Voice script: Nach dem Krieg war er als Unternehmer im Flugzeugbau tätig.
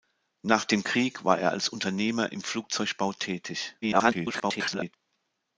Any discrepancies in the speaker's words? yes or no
yes